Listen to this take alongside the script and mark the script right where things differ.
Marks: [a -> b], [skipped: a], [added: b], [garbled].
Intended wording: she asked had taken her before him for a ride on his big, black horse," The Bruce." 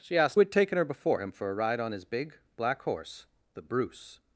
she asked had taken her before him for a ride on his big, black horse," The Bruce."